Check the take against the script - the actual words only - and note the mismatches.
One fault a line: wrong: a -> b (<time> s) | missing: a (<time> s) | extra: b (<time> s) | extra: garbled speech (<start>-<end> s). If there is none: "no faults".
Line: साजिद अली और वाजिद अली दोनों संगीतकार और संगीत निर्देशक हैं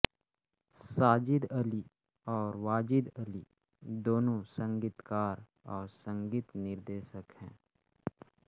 no faults